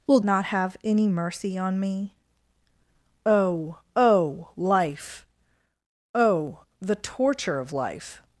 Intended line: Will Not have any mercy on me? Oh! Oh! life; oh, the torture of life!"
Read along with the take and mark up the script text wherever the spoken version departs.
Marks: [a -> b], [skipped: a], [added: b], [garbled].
Will Not have any mercy on me? Oh! Oh! life; oh, the torture of life!"